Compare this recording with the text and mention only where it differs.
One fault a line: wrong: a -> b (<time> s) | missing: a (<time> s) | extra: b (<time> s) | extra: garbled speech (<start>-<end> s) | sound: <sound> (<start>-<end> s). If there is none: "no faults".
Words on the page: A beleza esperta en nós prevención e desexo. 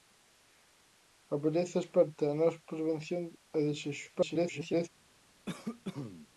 extra: garbled speech (4.1-4.9 s)
sound: cough (5.5-6.3 s)